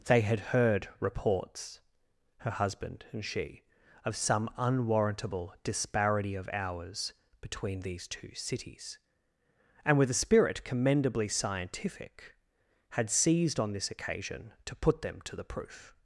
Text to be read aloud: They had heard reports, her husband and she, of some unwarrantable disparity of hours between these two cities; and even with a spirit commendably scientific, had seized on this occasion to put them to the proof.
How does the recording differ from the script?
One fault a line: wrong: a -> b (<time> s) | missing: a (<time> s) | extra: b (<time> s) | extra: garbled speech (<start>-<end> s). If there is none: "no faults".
missing: even (10.0 s)